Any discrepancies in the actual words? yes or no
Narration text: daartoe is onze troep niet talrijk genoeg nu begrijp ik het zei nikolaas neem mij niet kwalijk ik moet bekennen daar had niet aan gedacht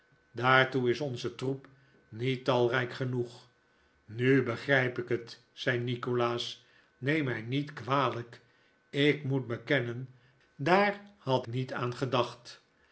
no